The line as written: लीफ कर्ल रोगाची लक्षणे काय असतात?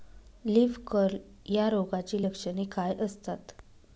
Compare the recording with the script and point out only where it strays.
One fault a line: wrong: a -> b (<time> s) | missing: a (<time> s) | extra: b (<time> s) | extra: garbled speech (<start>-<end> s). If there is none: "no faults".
extra: या (1.5 s)